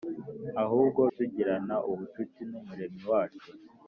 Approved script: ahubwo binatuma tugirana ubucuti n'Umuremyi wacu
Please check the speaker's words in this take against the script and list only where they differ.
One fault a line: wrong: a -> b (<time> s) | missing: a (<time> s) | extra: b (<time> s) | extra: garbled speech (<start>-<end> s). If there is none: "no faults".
missing: binatuma (1.0 s)